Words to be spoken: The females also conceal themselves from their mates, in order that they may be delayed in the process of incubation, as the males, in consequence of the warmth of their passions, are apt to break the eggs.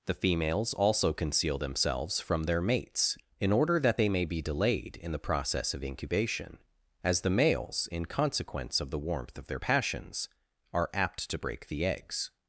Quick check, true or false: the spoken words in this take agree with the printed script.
true